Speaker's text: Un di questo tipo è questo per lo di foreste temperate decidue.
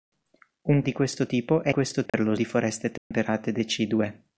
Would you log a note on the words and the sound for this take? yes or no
yes